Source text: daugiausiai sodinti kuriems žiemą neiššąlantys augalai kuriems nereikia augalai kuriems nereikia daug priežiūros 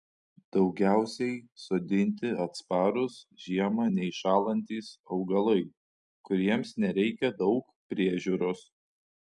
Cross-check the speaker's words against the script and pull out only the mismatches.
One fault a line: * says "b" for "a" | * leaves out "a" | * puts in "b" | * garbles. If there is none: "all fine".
* says "atsparūs" for "kuriems"
* leaves out "augalai kuriems nereikia"